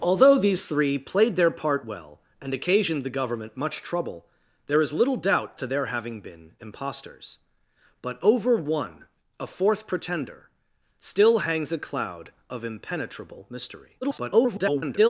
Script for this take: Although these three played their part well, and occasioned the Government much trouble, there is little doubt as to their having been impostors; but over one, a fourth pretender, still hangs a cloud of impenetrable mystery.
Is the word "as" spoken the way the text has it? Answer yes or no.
no